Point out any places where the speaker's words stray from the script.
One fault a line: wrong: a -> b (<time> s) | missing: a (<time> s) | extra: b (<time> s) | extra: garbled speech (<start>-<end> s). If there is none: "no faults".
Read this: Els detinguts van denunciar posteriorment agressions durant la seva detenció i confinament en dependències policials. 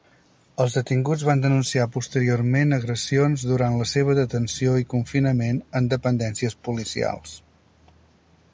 no faults